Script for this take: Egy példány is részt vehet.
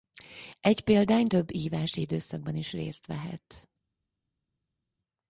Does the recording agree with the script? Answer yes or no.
no